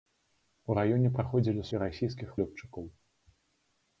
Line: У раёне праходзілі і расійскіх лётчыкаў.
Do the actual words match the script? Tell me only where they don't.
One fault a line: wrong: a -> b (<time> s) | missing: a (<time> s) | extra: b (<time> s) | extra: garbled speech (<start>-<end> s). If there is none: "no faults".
no faults